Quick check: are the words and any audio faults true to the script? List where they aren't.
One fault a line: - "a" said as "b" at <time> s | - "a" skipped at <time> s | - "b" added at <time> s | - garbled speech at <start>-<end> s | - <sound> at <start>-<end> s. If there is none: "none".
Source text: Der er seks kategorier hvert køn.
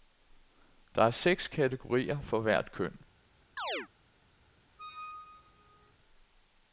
- "for" added at 2.2 s
- chirp at 3.6-3.9 s
- squeak at 4.8-5.9 s